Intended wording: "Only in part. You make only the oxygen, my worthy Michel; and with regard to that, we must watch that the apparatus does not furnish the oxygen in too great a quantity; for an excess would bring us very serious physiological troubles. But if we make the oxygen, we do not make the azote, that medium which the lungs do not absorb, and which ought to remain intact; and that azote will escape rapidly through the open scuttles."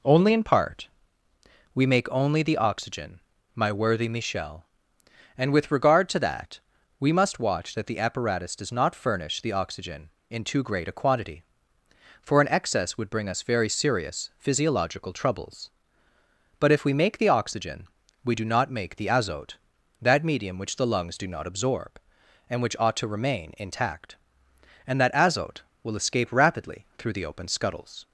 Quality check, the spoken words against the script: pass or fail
fail